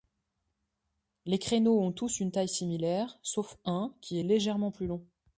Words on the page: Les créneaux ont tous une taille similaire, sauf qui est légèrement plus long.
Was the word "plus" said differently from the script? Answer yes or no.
no